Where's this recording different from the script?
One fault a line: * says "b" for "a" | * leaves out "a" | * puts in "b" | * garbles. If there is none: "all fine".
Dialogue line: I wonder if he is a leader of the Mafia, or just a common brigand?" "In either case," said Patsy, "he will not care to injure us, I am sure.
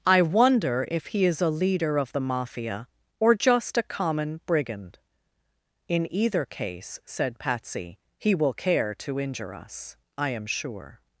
* leaves out "not"